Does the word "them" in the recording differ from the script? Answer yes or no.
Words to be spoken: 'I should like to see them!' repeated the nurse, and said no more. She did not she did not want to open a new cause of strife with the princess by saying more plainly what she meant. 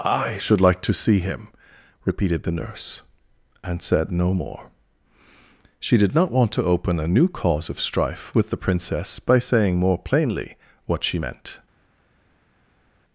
yes